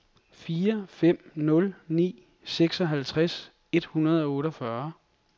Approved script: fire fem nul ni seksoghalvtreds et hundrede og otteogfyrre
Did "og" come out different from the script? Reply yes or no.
no